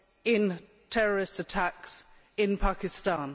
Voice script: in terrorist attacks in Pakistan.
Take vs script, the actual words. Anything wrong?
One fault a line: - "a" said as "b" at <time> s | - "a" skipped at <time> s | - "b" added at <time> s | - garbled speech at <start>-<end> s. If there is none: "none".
none